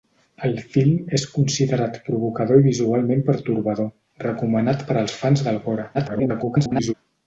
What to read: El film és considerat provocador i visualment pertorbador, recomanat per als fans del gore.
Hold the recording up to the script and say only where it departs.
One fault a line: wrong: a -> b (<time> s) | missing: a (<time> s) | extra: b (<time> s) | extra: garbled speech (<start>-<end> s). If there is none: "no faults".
extra: garbled speech (5.9-6.9 s)